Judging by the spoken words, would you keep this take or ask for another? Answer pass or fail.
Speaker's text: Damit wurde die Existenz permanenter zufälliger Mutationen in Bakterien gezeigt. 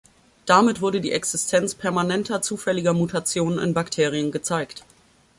pass